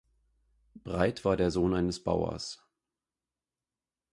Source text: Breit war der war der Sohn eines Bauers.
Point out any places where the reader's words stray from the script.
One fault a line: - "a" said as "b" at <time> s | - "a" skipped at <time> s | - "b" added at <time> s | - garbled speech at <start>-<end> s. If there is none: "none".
- "war der" skipped at 1.5 s